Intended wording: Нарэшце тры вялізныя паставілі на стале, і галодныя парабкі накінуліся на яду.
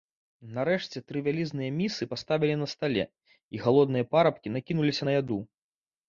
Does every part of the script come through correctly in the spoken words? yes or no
no